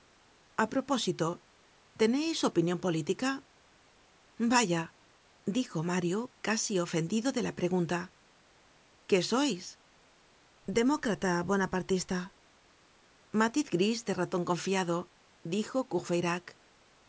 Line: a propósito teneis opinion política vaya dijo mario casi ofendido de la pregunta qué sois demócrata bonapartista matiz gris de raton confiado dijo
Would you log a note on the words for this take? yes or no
no